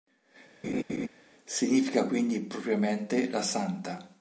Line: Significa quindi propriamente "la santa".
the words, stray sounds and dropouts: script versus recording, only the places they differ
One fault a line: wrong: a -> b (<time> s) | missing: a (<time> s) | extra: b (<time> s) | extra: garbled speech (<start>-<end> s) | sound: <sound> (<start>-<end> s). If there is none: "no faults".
sound: laugh (0.6-1.1 s)